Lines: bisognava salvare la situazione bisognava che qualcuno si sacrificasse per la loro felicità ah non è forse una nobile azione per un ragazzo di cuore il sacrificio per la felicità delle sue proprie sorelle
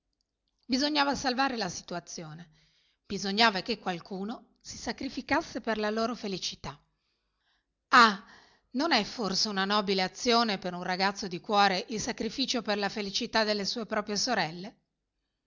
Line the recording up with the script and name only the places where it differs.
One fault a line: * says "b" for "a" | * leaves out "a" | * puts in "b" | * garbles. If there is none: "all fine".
all fine